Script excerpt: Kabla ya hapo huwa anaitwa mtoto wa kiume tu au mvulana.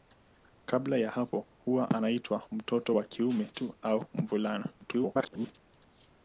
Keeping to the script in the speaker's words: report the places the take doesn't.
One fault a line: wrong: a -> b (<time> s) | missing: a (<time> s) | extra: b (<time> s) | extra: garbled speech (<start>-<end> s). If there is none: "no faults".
extra: garbled speech (4.8-5.6 s)